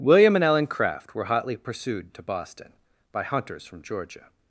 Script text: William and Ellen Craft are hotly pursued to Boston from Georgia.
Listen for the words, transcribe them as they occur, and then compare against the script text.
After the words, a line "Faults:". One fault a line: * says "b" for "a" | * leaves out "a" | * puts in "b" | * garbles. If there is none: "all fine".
William and Ellen Craft were hotly pursued to Boston by hunters from Georgia.
Faults:
* says "were" for "are"
* puts in "by hunters"